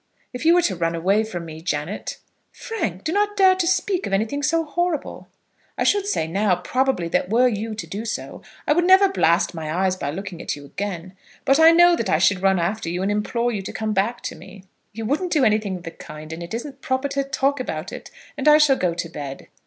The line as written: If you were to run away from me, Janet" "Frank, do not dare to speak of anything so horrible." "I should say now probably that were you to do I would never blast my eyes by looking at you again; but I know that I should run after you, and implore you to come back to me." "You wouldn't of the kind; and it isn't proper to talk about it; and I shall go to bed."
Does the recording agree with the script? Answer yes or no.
no